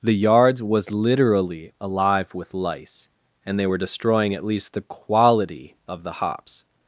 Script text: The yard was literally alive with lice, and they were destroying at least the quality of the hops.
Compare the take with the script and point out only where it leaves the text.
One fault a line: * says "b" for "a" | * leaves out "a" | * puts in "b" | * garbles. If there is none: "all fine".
* says "yards" for "yard"